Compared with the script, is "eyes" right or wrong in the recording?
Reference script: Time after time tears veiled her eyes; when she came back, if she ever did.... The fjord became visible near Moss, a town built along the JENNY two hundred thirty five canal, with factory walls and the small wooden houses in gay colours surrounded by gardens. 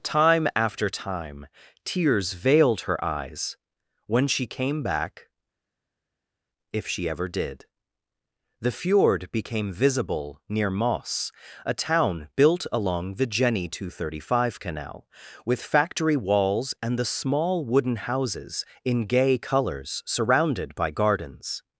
right